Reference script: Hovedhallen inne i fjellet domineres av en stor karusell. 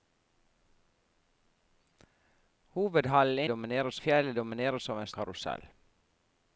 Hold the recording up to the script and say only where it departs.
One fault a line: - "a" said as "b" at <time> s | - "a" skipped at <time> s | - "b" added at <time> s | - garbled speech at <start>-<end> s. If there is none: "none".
- "inne" said as "domineres" at 3.5 s
- "stor" skipped at 5.1 s